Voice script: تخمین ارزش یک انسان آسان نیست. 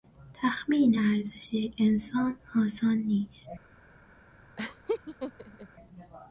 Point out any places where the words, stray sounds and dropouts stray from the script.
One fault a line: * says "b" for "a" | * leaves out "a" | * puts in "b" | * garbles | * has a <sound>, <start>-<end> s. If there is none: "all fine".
* has a laugh, 4.6-5.7 s